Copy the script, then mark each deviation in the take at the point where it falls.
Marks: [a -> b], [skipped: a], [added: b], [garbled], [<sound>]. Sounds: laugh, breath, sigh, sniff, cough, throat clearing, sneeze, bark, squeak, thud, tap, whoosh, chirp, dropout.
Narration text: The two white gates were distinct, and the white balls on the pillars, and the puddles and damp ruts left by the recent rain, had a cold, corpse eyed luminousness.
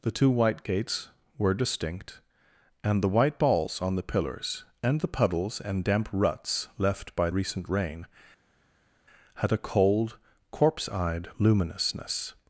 The two white gates were distinct, and the white balls on the pillars, and the puddles and damp ruts left by [skipped: the] recent rain, had a cold, corpse eyed luminousness.